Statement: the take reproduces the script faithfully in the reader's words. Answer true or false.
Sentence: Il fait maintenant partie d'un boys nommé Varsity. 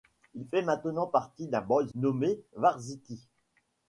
true